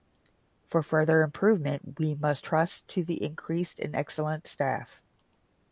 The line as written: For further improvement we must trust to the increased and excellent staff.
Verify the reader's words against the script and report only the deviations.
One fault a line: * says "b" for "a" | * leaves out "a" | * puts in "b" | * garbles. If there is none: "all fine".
all fine